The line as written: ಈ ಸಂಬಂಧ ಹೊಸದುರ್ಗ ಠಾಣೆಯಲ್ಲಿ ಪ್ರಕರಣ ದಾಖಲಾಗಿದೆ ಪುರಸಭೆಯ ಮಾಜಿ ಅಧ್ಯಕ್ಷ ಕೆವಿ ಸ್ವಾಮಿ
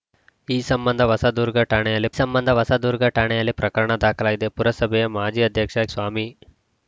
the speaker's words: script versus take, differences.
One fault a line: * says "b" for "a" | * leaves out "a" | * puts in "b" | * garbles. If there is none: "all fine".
* puts in "ಸಂಬಂಧ ಹೊಸದುರ್ಗ ಠಾಣೆಯಲ್ಲಿ"
* leaves out "ಕೆವಿ"